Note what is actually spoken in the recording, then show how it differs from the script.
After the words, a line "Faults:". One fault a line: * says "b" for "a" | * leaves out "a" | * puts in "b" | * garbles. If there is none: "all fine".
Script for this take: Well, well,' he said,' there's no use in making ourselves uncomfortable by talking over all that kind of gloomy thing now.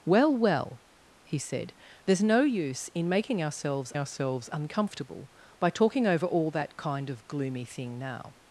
Well, well,' he said,' there's no use in making ourselves ourselves uncomfortable by talking over all that kind of gloomy thing now.
Faults:
* puts in "ourselves"